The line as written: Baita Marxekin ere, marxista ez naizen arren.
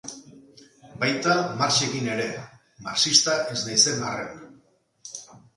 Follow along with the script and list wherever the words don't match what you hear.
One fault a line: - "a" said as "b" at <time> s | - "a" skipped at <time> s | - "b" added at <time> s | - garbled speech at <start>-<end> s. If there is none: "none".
none